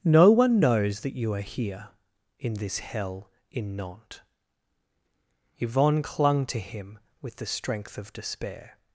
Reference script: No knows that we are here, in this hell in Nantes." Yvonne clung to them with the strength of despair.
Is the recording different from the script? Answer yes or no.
yes